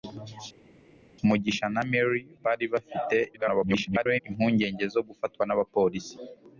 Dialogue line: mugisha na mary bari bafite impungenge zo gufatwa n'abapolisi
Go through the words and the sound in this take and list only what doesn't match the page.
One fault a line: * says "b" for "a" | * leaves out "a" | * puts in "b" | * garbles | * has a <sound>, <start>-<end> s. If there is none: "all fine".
* garbles